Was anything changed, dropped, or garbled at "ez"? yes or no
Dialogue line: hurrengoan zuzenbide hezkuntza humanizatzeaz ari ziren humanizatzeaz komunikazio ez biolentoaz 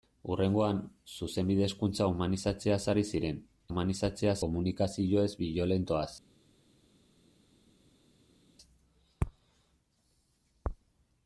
no